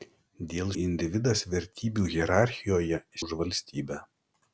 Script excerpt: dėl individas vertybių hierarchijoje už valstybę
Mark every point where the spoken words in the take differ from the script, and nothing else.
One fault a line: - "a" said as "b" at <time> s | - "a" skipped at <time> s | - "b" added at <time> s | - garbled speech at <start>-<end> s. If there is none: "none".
none